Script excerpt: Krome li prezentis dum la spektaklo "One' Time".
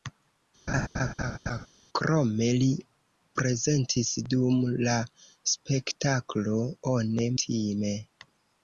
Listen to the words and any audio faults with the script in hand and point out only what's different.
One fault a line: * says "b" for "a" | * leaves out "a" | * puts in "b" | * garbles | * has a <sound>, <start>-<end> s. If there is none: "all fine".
* has a laugh, 0.7-1.7 s